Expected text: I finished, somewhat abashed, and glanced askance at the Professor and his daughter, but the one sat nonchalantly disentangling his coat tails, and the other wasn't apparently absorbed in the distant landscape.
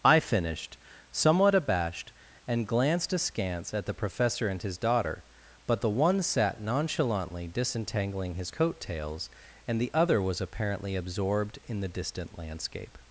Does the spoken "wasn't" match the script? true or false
false